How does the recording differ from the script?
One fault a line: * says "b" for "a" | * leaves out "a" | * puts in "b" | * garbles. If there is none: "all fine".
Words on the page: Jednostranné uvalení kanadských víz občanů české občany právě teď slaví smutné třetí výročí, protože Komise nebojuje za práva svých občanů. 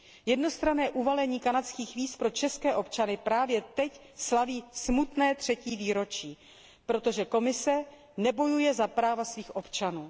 * says "pro" for "občanů"